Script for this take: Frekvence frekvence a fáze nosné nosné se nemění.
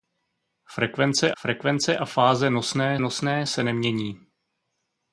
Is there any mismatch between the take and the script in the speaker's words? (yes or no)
no